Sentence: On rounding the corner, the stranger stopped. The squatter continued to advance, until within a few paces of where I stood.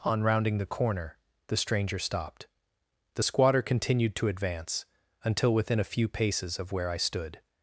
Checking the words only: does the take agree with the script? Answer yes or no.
yes